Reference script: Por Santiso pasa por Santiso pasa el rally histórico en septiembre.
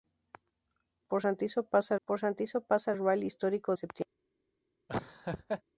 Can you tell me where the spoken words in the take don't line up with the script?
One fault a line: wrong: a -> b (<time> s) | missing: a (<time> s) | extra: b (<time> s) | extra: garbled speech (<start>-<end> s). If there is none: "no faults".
no faults